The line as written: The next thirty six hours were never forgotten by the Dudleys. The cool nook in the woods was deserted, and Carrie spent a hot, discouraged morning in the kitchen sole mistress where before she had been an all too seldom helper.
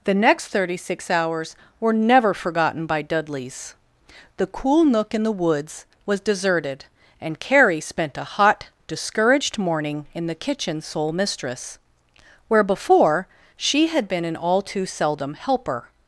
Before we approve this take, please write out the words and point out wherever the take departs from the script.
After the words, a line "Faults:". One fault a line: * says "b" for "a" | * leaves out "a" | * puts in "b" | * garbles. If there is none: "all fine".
The next thirty six hours were never forgotten by Dudleys. The cool nook in the woods was deserted, and Carrie spent a hot, discouraged morning in the kitchen sole mistress where before she had been an all too seldom helper.
Faults:
* leaves out "the"